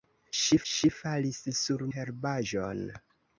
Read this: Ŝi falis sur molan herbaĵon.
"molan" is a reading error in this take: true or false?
true